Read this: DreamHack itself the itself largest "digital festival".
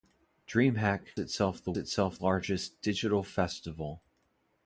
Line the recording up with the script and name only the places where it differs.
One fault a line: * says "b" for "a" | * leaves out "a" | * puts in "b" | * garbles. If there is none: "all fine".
all fine